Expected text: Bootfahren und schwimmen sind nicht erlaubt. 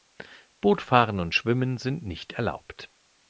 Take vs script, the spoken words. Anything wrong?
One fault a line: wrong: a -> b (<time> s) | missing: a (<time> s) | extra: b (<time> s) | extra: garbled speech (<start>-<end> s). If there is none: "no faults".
no faults